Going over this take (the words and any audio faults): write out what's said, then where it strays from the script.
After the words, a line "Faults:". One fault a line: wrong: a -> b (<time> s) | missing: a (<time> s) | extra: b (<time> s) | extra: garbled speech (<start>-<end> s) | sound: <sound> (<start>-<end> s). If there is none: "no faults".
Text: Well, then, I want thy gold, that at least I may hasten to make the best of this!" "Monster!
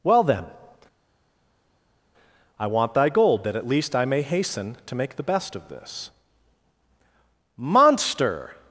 Well, then, I want thy gold, that at least I may hasten to make the best of this!" "Monster!
Faults:
no faults